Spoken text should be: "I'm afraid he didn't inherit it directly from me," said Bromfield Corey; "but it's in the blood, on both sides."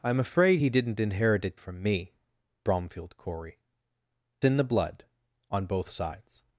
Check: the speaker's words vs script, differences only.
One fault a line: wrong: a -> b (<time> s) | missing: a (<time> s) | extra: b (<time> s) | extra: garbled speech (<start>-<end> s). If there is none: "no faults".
missing: directly (1.6 s)
missing: said (2.1 s)
missing: but it's (3.6 s)